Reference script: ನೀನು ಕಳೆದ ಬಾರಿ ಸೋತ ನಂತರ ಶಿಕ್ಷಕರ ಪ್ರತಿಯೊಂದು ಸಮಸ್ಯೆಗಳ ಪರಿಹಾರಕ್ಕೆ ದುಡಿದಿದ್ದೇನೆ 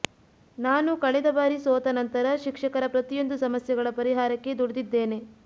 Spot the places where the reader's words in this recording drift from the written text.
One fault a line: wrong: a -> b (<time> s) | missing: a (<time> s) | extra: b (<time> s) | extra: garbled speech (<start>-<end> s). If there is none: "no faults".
wrong: ನೀನು -> ನಾನು (0.6 s)